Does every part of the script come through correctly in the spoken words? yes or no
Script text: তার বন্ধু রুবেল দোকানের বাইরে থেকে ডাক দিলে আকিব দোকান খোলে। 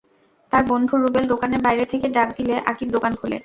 yes